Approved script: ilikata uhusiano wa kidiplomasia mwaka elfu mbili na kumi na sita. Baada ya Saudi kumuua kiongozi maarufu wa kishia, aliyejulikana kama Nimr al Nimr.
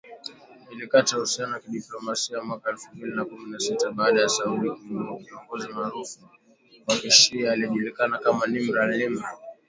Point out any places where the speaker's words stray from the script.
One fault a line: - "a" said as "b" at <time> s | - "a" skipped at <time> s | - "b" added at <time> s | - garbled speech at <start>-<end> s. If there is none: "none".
none